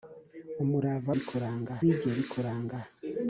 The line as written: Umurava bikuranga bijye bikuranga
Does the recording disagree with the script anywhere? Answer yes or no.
no